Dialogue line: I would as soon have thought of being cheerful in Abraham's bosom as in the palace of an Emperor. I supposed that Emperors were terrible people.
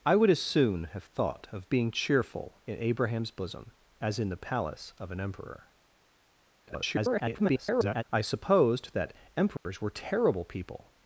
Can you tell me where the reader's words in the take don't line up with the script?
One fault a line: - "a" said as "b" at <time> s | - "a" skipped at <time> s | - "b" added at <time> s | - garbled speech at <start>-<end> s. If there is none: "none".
- garbled speech at 6.7-8.0 s